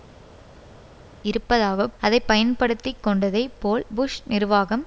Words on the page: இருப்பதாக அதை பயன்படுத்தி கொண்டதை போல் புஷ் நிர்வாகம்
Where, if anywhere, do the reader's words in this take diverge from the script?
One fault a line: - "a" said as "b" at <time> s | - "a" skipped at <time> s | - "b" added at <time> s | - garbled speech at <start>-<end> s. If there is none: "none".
none